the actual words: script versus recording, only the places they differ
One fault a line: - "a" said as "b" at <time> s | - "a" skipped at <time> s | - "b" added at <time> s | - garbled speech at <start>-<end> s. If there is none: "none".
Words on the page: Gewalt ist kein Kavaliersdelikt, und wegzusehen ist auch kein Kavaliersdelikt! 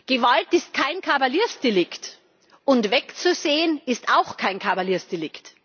none